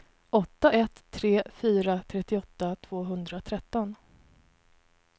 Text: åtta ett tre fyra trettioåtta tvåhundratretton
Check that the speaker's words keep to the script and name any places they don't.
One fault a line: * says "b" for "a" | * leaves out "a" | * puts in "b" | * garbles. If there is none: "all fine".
all fine